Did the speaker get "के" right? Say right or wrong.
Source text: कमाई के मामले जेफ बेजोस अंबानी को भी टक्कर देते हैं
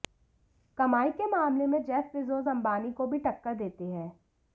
right